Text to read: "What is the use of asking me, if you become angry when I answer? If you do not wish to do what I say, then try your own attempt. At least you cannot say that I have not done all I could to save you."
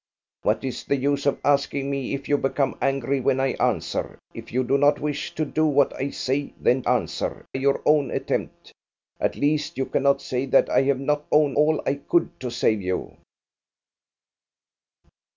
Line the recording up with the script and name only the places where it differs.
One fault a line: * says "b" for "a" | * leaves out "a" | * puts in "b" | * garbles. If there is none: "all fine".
* says "answer" for "try"
* says "own" for "done"